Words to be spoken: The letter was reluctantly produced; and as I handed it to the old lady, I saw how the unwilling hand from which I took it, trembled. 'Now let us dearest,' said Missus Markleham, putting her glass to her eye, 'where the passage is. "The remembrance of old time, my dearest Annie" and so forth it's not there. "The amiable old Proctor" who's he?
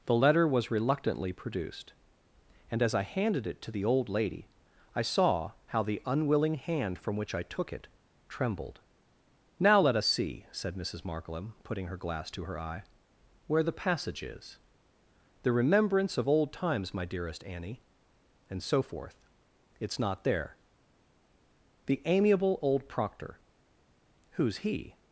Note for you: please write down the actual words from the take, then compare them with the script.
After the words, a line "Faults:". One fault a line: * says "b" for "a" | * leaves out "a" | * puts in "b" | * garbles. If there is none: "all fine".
The letter was reluctantly produced; and as I handed it to the old lady, I saw how the unwilling hand from which I took it, trembled. 'Now let us see,' said Missus Markleham, putting her glass to her eye, 'where the passage is. "The remembrance of old times, my dearest Annie" and so forth it's not there. "The amiable old Proctor" who's he?
Faults:
* says "see" for "dearest"
* says "times" for "time"